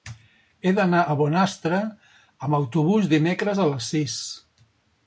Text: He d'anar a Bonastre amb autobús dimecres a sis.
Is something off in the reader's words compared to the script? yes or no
yes